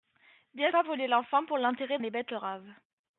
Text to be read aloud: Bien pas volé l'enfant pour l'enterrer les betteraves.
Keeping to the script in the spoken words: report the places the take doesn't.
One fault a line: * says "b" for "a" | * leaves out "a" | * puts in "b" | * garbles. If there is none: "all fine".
all fine